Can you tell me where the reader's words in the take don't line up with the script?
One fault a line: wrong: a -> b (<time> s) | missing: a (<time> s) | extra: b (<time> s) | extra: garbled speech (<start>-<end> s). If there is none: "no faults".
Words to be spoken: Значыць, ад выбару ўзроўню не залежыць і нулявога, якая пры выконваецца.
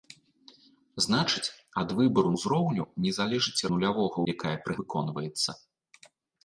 no faults